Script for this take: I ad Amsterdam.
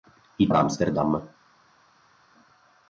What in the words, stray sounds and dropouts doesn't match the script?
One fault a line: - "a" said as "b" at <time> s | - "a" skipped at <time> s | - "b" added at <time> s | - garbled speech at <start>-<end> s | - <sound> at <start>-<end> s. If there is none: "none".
none